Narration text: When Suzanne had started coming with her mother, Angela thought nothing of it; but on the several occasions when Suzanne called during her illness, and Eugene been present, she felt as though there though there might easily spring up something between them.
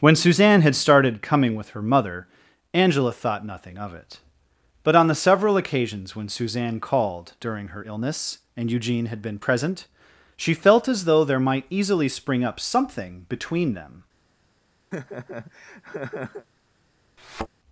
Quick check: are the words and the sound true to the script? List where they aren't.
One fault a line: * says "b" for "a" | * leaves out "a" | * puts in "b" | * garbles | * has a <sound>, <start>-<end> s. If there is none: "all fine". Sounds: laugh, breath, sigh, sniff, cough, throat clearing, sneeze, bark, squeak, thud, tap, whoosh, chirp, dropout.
* puts in "had"
* leaves out "though there"
* has a laugh, 14.9-16.5 s
* has a thud, 17.2-17.5 s